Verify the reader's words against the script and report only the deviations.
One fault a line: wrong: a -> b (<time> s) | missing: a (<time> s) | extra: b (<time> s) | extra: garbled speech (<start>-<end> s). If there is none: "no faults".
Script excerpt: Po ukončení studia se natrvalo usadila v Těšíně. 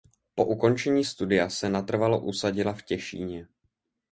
no faults